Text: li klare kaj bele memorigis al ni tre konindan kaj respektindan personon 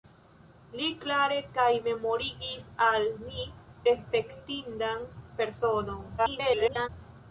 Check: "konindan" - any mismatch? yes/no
yes